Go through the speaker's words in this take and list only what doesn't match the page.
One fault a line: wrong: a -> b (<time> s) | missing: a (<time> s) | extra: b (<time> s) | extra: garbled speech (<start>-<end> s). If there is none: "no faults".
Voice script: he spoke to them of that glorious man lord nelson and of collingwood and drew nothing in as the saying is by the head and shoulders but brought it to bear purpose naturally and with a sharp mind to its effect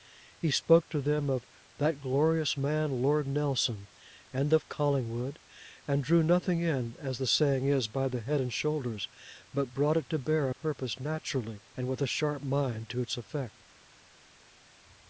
no faults